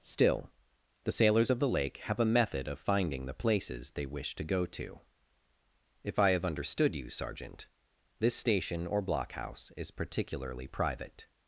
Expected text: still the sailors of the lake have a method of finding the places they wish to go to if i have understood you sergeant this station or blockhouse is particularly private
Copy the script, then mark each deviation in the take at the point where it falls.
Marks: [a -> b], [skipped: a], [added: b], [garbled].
still the sailors of the lake have a method of finding the places they wish to go to if i have understood you sergeant this station or blockhouse is particularly private